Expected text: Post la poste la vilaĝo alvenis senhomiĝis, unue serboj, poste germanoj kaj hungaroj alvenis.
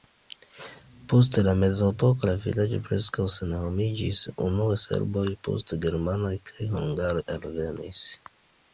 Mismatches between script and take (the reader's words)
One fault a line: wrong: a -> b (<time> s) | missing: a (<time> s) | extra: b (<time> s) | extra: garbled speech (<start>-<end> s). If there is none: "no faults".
wrong: poste -> mezepoko (1.6 s)
wrong: alvenis -> preskaŭ (2.9 s)